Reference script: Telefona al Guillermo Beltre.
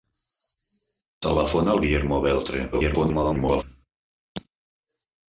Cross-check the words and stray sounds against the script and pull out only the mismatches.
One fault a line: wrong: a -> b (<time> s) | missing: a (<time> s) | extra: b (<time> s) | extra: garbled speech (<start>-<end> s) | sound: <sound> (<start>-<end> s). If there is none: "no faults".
extra: garbled speech (2.7-3.6 s)